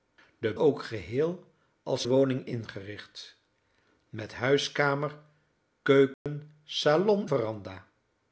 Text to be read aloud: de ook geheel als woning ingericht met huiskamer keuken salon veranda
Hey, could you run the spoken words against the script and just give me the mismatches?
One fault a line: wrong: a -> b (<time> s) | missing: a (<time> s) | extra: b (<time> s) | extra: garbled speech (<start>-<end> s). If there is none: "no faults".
no faults